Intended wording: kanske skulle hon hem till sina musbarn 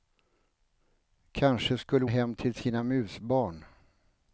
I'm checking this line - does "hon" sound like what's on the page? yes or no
no